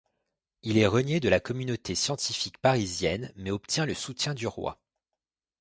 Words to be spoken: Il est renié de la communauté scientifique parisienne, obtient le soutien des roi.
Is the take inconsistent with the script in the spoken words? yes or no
yes